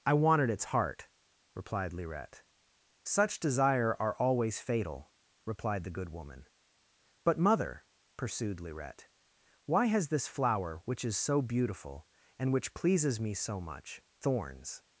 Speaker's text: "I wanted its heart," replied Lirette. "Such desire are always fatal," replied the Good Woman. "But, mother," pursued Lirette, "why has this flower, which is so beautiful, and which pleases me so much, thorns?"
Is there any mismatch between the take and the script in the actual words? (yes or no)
no